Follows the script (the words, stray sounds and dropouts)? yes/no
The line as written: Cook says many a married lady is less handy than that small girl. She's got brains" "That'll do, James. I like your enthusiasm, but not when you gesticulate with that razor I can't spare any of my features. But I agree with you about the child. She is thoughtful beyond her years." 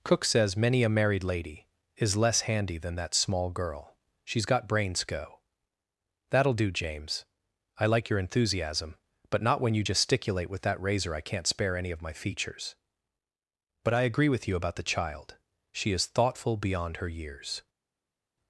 no